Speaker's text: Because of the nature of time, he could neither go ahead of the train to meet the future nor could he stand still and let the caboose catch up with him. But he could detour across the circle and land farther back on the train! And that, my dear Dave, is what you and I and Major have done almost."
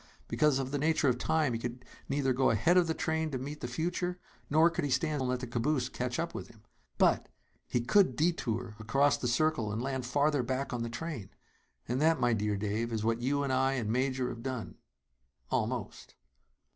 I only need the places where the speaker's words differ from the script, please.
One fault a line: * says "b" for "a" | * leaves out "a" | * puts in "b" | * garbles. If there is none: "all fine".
* leaves out "still"